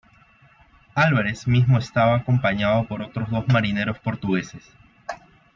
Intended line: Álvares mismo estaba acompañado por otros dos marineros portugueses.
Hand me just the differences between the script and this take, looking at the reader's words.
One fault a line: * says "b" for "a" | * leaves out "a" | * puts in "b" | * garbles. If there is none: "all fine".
all fine